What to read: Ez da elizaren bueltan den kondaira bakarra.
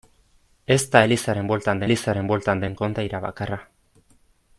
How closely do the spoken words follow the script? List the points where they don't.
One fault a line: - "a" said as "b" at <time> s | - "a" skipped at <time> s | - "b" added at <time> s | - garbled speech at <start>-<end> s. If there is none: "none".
- "elizaren bueltan" added at 1.9 s